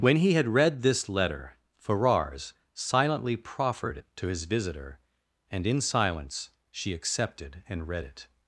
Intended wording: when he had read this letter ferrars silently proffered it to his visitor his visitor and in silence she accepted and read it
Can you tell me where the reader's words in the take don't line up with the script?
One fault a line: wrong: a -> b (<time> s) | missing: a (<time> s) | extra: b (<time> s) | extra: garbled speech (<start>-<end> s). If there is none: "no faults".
missing: his visitor (5.0 s)